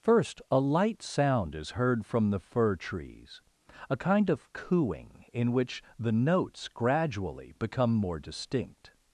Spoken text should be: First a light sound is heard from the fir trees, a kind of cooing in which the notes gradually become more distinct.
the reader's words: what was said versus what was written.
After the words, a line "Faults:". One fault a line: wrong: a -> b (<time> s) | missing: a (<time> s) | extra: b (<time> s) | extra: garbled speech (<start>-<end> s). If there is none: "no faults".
First a light sound is heard from the fir trees, a kind of cooing in which the notes gradually become more distinct.
Faults:
no faults